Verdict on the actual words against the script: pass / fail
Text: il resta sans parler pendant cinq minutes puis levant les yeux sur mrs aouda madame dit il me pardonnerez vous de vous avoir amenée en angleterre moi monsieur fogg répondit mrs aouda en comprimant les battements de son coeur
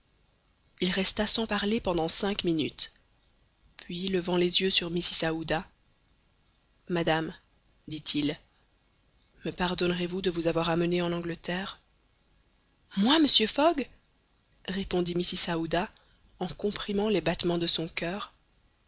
pass